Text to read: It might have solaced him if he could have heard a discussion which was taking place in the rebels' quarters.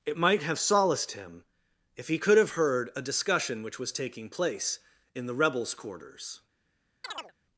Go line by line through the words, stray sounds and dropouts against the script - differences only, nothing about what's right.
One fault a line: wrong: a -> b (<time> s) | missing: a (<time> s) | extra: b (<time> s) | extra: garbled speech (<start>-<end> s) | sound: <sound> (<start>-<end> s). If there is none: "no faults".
sound: chirp (7.0-7.3 s)